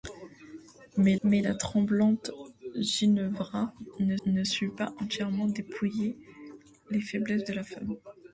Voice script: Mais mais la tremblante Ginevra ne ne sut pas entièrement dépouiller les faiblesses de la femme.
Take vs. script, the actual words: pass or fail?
pass